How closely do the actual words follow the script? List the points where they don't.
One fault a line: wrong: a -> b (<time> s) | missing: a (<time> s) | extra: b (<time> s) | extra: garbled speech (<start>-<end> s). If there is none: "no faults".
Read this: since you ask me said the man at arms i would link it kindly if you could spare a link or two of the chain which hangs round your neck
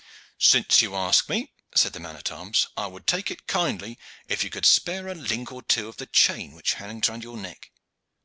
wrong: link -> take (3.0 s)